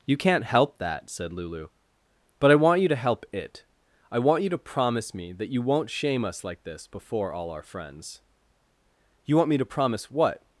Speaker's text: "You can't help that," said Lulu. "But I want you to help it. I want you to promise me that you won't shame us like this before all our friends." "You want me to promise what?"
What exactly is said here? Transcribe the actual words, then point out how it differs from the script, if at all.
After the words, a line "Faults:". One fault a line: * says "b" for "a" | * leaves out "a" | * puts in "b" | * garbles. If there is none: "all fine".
"You can't help that," said Lulu. "But I want you to help it. I want you to promise me that you won't shame us like this before all our friends." "You want me to promise what?"
Faults:
all fine